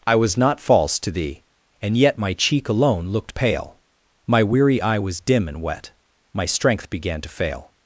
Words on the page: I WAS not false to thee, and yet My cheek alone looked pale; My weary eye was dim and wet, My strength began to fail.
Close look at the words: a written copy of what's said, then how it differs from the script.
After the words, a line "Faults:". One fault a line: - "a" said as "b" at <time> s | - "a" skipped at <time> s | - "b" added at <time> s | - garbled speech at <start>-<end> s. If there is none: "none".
I WAS not false to thee, and yet My cheek alone looked pale; My weary eye was dim and wet, My strength began to fail.
Faults:
none